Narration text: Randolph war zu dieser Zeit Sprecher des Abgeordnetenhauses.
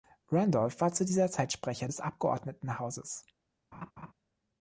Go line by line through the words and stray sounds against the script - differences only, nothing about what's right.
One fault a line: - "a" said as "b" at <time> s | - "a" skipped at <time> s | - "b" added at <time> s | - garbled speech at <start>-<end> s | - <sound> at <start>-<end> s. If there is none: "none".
- laugh at 3.7-4.1 s